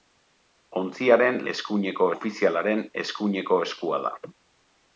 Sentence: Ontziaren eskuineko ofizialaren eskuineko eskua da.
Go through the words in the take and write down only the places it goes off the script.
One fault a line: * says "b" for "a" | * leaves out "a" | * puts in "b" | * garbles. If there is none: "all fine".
all fine